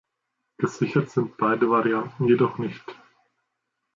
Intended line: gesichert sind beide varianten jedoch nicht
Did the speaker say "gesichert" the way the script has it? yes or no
yes